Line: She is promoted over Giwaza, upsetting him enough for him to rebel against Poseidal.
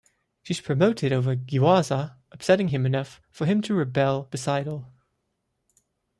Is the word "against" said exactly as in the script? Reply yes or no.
no